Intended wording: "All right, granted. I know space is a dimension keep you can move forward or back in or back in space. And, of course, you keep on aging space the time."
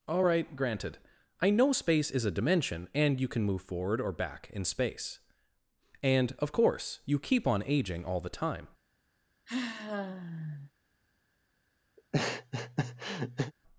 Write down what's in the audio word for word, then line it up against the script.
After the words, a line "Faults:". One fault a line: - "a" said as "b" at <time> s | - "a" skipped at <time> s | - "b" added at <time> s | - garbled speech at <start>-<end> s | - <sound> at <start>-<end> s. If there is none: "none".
"All right, granted. I know space is a dimension and you can move forward or back in space. And, of course, you keep on aging all the time."
Faults:
- "keep" said as "and" at 2.9 s
- "or back in" skipped at 4.6 s
- "space" said as "all" at 8.0 s
- sigh at 9.5-10.7 s
- laugh at 12.0-13.5 s